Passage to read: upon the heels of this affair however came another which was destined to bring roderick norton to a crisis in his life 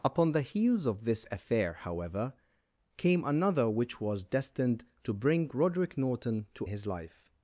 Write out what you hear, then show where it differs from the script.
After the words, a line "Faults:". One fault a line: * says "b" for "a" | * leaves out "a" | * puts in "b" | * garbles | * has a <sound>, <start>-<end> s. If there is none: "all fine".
upon the heels of this affair however came another which was destined to bring roderick norton to his life
Faults:
* leaves out "a crisis in"